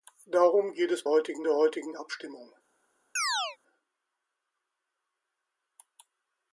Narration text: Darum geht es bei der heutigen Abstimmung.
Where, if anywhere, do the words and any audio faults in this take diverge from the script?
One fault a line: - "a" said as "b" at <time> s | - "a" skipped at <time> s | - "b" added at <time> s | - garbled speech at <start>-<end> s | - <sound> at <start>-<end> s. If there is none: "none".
- "bei" said as "heutigen" at 1.1 s
- chirp at 3.2-3.6 s